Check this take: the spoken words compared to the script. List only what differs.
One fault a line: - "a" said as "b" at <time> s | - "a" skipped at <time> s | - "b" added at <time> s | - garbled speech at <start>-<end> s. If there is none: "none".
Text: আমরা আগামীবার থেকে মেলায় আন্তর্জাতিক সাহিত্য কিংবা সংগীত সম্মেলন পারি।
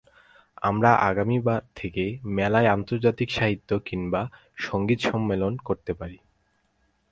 - "করতে" added at 5.7 s